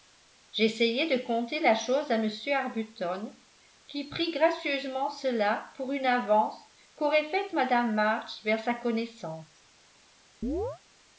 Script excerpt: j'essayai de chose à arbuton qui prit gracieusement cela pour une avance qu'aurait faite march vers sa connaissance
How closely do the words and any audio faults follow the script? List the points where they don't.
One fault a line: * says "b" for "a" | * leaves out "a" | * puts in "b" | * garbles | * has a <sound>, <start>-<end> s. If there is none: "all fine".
* puts in "conter la"
* puts in "m"
* puts in "mme"
* has a chirp, 10.4-10.8 s